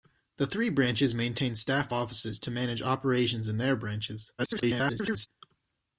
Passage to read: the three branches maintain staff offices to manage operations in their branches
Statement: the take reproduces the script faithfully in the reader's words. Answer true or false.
false